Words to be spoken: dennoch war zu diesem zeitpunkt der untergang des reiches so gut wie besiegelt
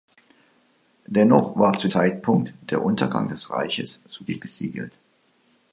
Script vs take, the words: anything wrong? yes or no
yes